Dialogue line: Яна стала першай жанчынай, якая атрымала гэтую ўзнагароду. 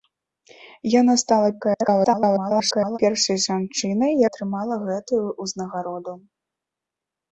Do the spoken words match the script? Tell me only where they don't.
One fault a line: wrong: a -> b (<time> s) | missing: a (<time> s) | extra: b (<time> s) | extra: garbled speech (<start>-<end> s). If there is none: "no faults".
extra: garbled speech (1.6-3.0 s)
missing: якая (4.1 s)